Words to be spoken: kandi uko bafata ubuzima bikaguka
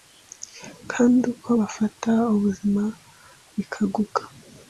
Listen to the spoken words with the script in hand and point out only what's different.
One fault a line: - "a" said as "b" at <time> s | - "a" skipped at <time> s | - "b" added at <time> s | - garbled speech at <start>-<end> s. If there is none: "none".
none